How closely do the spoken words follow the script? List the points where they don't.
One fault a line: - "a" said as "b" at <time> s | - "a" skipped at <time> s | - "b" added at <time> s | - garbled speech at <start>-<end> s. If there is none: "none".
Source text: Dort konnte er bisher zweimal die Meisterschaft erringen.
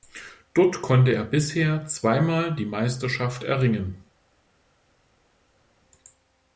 none